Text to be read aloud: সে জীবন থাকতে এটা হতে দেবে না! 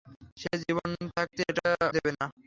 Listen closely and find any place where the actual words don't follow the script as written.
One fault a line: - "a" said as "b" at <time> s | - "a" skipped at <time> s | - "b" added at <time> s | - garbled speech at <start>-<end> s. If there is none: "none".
- "হতে" skipped at 1.7 s